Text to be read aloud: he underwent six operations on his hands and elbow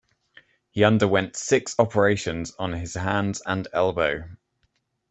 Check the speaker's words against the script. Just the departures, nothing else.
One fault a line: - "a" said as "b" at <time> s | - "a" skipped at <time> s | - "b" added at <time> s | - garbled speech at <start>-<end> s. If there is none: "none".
none